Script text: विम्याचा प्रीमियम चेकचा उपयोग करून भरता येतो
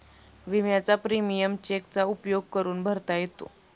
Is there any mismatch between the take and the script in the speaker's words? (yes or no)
no